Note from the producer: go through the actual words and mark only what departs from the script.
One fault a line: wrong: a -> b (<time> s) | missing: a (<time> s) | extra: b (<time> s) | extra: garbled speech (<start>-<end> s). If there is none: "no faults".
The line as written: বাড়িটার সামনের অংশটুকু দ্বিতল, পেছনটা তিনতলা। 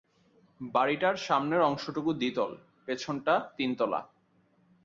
no faults